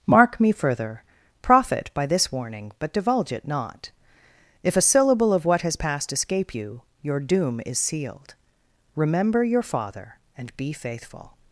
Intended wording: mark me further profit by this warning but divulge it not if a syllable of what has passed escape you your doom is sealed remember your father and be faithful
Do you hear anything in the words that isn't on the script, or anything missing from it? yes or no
no